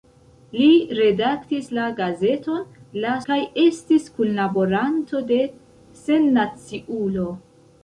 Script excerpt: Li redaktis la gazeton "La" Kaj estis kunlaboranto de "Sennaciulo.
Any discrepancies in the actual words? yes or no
no